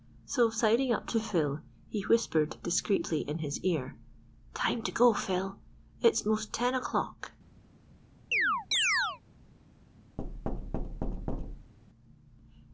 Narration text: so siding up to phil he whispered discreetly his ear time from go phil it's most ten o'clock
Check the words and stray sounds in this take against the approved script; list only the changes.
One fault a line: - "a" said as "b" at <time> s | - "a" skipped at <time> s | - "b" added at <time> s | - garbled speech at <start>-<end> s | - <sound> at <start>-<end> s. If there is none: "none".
- "in" added at 3.3 s
- "from" said as "to" at 4.8 s
- chirp at 8.3-9.2 s
- thud at 10.2-11.7 s